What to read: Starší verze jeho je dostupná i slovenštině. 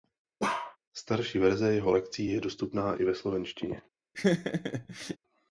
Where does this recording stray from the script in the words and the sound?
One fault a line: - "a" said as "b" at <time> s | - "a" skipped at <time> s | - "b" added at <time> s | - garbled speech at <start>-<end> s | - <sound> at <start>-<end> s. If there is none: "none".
- bark at 0.4-0.8 s
- "lekcí" added at 1.9 s
- "ve" added at 3.0 s
- laugh at 4.1-5.2 s